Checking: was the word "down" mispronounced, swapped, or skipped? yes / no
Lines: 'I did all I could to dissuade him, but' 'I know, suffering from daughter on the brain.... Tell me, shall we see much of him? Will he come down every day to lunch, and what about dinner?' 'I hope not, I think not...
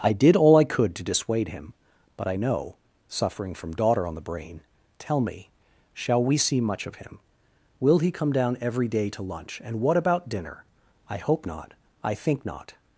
no